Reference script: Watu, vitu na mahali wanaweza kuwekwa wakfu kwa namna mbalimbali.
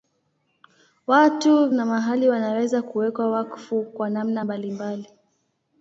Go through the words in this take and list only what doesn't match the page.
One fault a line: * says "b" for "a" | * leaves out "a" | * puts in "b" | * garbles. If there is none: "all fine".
* leaves out "vitu"